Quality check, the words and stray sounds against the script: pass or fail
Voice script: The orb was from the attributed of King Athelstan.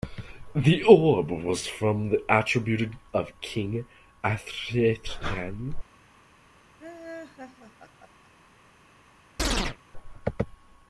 fail